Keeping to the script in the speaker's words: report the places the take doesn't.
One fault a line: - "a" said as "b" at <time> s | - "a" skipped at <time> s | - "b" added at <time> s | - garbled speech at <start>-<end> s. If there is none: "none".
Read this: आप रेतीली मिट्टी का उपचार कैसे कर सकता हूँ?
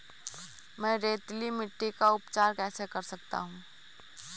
- "आप" said as "मैं" at 0.8 s